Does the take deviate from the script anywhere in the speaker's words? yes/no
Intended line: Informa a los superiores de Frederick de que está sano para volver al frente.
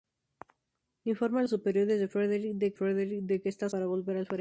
yes